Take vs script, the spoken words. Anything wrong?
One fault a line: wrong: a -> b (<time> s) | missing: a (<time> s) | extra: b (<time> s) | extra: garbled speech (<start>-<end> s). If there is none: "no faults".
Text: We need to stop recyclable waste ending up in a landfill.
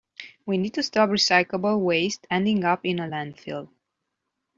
no faults